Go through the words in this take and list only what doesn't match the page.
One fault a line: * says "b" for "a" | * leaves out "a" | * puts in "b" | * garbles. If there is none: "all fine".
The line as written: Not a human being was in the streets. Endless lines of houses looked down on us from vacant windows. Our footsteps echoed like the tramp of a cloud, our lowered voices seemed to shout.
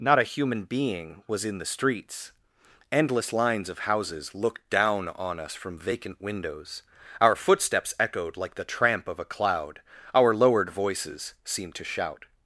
all fine